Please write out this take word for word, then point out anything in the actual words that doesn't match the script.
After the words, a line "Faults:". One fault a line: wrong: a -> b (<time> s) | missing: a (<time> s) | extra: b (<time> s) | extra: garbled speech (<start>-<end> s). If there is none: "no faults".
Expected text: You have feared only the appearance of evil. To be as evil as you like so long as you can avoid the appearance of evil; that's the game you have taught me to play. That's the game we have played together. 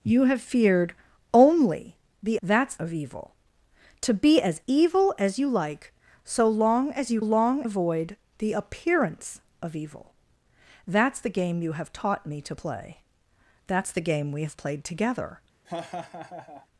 You have feared only the that's of evil. To be as evil as you like so long as you long avoid the appearance of evil; that's the game you have taught me to play. That's the game we have played together.
Faults:
wrong: appearance -> that's (2.4 s)
wrong: can -> long (7.2 s)